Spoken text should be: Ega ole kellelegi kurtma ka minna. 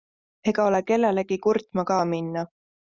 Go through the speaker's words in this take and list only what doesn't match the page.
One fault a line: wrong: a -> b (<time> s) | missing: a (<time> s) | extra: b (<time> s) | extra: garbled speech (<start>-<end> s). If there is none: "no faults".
no faults